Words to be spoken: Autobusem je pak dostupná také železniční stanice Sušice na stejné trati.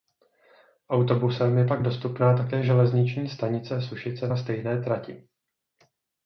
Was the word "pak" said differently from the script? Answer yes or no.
no